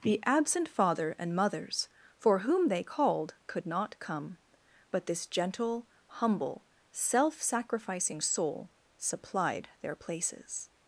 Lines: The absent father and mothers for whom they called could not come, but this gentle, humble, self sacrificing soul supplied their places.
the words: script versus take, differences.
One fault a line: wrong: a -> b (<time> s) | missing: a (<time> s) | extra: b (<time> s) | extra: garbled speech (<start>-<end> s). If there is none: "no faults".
no faults